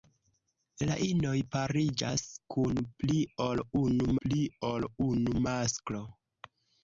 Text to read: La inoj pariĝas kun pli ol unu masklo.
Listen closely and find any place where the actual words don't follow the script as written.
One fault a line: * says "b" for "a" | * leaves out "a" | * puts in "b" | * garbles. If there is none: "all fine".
* puts in "pli ol unu"